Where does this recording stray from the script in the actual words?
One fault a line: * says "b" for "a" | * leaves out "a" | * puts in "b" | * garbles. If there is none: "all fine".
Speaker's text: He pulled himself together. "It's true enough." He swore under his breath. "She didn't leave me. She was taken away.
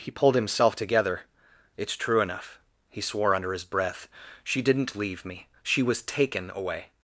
all fine